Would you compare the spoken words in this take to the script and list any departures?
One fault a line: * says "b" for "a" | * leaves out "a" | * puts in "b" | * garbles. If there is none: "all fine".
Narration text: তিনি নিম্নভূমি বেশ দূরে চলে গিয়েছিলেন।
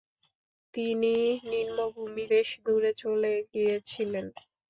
all fine